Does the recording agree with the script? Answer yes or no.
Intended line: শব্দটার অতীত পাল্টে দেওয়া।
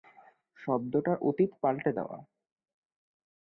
yes